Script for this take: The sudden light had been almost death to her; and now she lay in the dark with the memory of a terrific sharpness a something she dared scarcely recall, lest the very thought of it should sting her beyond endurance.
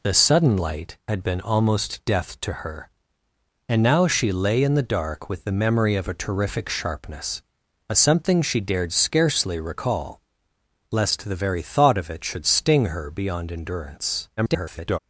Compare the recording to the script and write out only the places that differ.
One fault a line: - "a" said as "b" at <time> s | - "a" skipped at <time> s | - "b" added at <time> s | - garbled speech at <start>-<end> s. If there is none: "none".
- garbled speech at 14.4-15.0 s